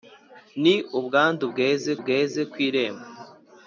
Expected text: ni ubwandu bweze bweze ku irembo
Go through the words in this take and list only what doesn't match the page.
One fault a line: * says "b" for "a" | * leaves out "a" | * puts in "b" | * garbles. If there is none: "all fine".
all fine